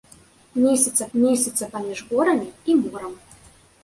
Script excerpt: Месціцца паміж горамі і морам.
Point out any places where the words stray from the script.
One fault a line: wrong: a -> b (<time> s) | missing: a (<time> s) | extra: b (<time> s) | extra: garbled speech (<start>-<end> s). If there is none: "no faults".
extra: месціцца (1.2 s)